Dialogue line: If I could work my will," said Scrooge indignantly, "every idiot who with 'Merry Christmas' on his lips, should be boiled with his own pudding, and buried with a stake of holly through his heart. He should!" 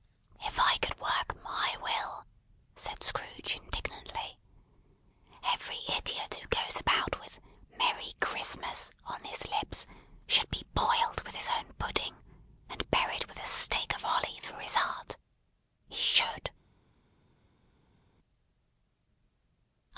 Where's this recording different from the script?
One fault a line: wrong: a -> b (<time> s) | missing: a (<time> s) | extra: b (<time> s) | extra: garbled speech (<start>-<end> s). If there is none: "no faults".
extra: goes about (6.5 s)